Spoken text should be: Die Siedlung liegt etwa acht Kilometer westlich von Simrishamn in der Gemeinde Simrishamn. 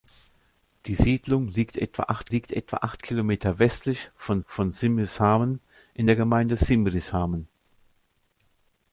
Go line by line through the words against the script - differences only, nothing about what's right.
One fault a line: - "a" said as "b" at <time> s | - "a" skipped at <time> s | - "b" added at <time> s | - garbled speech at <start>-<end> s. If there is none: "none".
- "liegt etwa acht" added at 2.3 s
- "von" added at 4.5 s